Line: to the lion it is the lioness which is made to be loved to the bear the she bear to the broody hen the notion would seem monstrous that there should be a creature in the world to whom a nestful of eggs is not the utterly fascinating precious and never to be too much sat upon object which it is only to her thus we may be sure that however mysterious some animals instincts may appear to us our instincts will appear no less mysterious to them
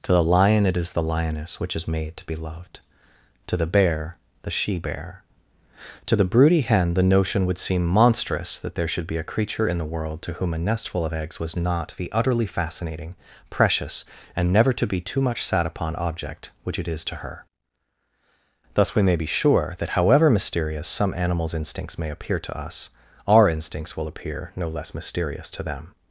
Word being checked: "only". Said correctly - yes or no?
no